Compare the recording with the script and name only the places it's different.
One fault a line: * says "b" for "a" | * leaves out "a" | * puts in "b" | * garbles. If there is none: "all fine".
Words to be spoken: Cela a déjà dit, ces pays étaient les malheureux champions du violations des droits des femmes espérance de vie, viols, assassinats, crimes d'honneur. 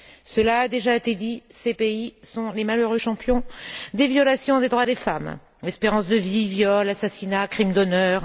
* puts in "été"
* says "sont" for "étaient"
* says "des" for "du"